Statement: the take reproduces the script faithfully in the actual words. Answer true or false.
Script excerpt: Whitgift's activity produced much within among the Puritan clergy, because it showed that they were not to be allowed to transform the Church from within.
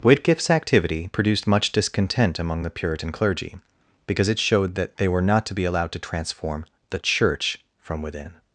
false